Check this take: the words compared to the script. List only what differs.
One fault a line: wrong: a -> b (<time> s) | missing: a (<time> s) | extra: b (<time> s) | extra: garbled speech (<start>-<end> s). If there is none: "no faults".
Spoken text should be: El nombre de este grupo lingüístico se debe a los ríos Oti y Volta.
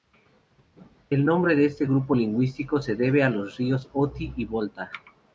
no faults